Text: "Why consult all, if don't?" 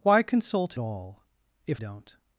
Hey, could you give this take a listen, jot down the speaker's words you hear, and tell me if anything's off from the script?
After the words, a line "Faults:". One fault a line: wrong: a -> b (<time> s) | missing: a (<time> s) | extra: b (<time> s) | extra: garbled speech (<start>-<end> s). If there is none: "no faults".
"Why consult all, if don't?"
Faults:
no faults